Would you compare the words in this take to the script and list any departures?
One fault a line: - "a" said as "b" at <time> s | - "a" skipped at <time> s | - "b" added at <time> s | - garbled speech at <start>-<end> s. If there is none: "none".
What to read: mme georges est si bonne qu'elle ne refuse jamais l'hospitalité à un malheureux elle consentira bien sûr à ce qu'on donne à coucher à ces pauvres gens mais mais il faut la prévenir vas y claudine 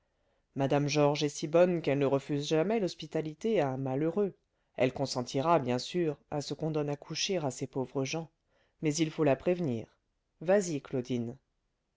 - "mais" skipped at 8.9 s